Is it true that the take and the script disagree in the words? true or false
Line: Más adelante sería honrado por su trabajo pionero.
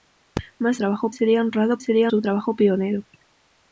true